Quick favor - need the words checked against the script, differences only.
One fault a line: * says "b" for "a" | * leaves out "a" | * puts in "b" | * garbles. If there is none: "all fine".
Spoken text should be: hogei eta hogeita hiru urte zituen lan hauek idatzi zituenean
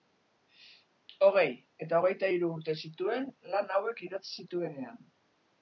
all fine